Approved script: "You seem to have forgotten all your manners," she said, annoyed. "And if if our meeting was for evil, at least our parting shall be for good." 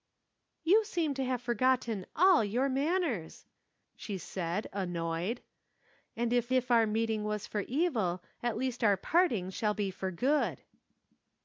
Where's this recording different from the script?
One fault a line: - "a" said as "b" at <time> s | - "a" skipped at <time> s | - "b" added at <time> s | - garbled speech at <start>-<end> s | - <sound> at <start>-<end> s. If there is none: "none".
none